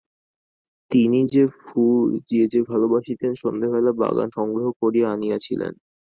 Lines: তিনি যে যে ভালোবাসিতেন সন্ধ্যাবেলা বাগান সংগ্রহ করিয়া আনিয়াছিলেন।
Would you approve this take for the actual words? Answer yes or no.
yes